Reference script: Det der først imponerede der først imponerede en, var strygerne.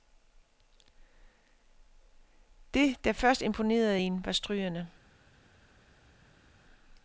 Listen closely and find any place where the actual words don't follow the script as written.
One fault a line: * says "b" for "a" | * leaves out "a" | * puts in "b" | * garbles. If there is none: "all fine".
* leaves out "der først imponerede"